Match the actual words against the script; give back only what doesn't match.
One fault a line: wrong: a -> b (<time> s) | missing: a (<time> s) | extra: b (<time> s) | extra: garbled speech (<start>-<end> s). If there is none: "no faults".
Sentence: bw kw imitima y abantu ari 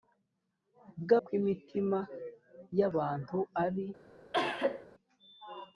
no faults